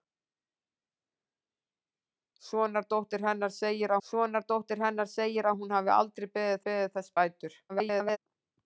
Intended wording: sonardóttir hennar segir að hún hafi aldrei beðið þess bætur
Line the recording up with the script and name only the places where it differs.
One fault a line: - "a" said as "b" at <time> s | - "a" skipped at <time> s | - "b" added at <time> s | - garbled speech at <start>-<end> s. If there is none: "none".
- "sonardóttir hennar segir" added at 4.1 s
- "beðið" added at 6.7 s
- garbled speech at 7.7-8.2 s